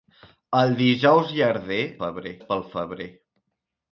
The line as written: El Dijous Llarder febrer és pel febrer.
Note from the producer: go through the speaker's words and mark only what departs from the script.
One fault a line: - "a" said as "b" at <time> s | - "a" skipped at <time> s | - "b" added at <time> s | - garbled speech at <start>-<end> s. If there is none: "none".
none